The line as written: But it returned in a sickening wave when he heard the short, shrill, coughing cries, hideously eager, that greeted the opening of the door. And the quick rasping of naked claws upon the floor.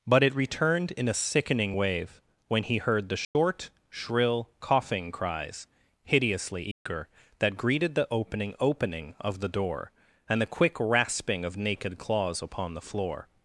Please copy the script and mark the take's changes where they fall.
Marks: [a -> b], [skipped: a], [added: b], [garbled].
But it returned in a sickening wave when he heard the short, shrill, coughing cries, hideously eager, that greeted the opening [added: opening] of the door. And the quick rasping of naked claws upon the floor.